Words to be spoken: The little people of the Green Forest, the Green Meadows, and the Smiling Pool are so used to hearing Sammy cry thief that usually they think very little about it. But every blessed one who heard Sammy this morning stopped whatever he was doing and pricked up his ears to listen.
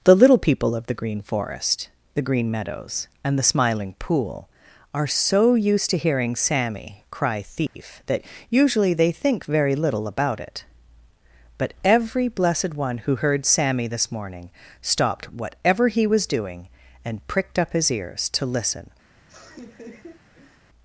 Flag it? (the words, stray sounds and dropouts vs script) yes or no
yes